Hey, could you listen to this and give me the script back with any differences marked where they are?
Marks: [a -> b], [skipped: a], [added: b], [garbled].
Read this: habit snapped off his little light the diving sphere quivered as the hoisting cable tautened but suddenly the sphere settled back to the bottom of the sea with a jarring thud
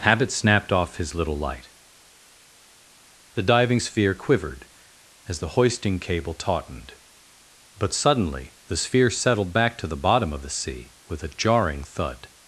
habit snapped off his little light the diving sphere quivered as the hoisting cable tautened but suddenly the sphere settled back to the bottom of the sea with a jarring thud